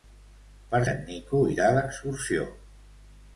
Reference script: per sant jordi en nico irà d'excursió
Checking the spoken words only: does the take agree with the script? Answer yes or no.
no